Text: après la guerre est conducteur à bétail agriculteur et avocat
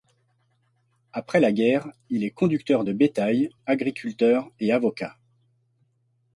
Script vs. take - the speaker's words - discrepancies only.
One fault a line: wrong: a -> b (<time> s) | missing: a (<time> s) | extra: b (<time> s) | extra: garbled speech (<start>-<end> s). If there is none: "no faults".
extra: il (2.1 s)
wrong: à -> de (2.8 s)